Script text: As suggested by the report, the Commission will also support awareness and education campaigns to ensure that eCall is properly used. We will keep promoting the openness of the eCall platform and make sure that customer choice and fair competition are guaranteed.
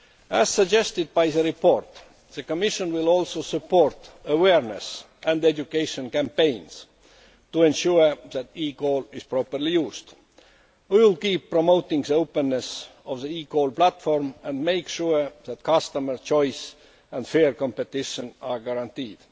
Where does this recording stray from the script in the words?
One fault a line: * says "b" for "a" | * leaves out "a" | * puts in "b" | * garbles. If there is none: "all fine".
all fine